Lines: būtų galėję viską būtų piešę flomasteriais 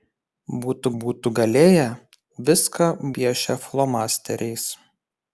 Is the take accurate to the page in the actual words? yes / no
no